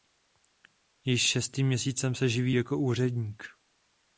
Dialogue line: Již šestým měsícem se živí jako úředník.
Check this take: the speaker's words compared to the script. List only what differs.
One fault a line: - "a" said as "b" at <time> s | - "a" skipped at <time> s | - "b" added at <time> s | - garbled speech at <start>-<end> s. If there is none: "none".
none